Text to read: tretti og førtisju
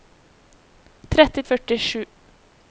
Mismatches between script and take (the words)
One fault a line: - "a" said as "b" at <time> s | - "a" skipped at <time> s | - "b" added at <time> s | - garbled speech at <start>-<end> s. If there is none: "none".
none